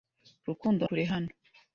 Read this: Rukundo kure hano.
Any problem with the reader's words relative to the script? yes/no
no